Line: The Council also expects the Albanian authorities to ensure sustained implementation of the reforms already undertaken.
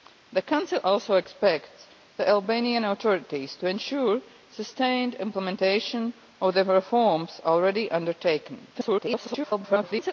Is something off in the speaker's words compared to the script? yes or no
yes